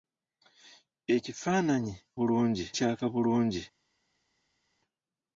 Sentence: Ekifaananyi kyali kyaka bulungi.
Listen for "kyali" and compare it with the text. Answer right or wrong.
wrong